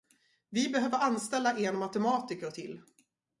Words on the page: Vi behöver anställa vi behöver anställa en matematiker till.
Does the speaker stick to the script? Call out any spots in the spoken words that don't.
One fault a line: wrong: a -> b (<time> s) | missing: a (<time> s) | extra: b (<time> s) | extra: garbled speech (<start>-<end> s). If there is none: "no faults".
missing: vi behöver anställa (1.6 s)